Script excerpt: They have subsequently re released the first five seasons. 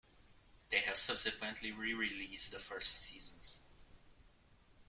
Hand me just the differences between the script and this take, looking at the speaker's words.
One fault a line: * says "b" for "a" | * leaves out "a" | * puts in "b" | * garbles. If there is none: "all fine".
* leaves out "five"